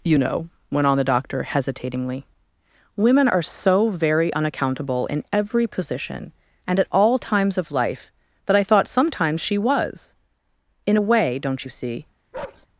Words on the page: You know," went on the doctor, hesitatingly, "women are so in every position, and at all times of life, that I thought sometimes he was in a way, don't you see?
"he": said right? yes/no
no